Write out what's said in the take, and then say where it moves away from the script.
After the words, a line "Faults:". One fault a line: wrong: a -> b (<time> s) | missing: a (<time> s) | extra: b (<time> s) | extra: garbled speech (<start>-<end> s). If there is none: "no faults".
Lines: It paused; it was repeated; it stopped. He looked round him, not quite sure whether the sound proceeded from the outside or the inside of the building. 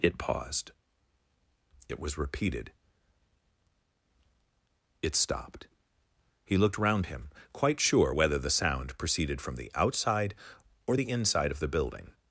It paused; it was repeated; it stopped. He looked round him, quite sure whether the sound proceeded from the outside or the inside of the building.
Faults:
missing: not (7.3 s)